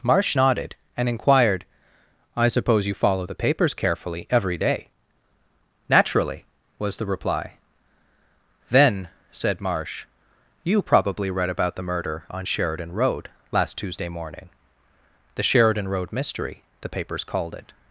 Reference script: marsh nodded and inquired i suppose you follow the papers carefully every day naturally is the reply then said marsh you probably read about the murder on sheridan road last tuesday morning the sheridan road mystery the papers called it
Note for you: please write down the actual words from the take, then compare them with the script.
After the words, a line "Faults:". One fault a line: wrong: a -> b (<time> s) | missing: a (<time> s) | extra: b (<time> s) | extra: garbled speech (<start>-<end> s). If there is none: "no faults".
marsh nodded and inquired i suppose you follow the papers carefully every day naturally was the reply then said marsh you probably read about the murder on sheridan road last tuesday morning the sheridan road mystery the papers called it
Faults:
wrong: is -> was (6.8 s)